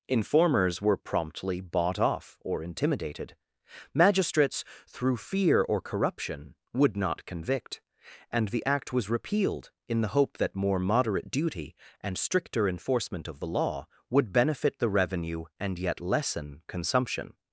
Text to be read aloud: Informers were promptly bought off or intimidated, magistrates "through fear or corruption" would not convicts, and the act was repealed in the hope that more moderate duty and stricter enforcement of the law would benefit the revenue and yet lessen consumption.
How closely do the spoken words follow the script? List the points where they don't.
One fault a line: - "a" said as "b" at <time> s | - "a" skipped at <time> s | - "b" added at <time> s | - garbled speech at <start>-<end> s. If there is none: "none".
- "convicts" said as "convict" at 7.3 s